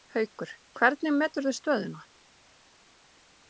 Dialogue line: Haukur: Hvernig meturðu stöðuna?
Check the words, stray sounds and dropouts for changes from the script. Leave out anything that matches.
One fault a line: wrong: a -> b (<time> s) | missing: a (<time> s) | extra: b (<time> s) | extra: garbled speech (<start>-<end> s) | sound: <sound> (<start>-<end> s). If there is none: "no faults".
no faults